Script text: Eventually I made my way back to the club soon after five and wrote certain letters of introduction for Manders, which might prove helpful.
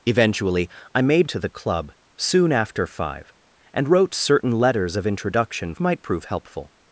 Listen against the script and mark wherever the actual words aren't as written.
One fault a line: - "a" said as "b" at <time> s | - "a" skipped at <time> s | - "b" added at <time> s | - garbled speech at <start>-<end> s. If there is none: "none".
- "my way back" skipped at 1.3 s
- "for Manders which" skipped at 5.7 s